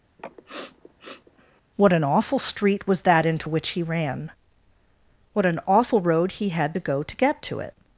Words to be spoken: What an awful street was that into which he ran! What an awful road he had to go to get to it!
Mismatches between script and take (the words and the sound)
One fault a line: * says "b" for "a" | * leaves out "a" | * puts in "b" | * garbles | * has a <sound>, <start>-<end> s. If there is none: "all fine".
* has a sniff, 0.2-1.6 s